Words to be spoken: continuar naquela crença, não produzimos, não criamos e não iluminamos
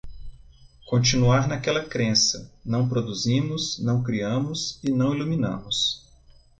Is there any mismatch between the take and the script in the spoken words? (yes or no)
no